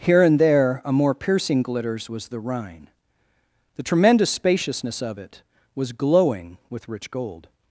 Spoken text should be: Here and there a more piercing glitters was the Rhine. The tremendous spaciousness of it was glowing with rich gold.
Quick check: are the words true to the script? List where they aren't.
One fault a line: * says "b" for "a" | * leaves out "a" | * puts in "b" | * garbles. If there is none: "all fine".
all fine